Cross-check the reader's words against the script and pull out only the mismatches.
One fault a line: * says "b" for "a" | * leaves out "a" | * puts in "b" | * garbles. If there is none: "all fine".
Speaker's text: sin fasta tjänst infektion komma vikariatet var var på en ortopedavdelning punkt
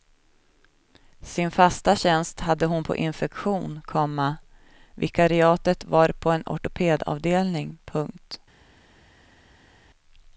* puts in "hade hon på"
* leaves out "var"